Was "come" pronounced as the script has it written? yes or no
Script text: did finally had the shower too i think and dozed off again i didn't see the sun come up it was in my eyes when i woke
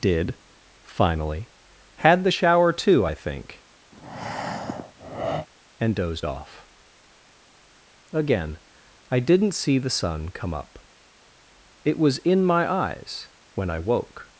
yes